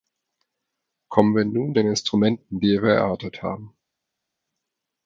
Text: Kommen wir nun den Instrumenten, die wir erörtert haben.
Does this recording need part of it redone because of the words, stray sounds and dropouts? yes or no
no